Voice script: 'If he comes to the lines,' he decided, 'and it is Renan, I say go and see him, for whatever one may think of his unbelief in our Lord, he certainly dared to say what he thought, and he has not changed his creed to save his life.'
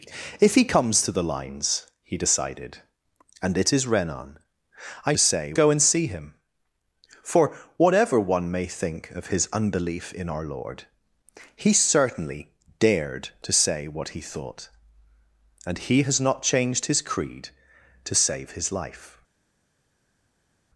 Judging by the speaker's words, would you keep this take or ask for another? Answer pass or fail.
pass